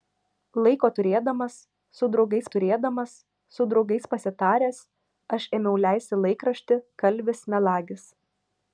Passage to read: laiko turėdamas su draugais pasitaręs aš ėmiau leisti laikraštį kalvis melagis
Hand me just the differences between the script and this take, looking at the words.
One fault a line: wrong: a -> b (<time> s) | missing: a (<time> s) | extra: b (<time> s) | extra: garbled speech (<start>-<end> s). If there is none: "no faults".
extra: turėdamas su draugais (2.5 s)